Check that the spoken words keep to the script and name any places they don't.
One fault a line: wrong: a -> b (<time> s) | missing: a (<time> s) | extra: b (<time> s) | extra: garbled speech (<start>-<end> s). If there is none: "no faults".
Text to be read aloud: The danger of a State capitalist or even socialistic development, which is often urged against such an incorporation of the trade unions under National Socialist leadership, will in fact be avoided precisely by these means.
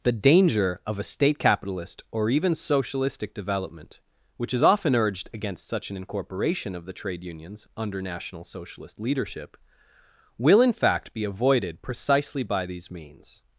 no faults